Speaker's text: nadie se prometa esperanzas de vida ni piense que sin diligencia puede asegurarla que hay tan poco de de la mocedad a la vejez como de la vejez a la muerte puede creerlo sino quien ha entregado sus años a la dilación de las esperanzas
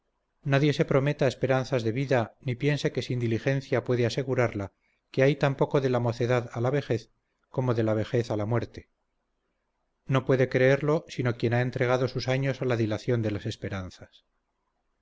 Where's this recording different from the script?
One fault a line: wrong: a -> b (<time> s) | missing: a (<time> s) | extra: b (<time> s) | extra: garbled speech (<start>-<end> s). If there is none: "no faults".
missing: de (5.9 s)
extra: no (10.1 s)